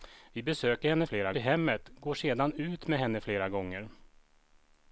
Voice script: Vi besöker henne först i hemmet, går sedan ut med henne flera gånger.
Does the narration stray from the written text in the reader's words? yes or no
yes